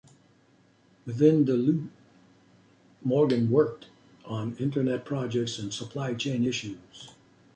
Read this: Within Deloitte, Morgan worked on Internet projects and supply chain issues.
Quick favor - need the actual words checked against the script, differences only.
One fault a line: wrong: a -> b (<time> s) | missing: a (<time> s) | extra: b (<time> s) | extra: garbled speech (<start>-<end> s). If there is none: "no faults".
no faults